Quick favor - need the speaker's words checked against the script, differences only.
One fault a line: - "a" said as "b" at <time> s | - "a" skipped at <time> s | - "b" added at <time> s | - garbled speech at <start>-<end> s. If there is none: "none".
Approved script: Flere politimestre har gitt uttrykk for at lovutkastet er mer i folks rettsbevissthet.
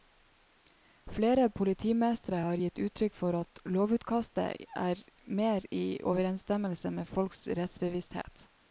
- "overensstemmelse med" added at 6.1 s